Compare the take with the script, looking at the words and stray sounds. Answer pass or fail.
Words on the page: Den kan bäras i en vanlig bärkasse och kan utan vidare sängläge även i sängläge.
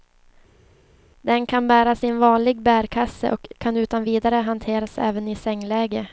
fail